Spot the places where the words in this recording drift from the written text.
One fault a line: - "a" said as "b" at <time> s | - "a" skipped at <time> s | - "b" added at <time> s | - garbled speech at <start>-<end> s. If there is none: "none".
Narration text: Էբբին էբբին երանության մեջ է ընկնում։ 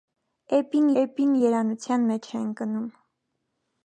none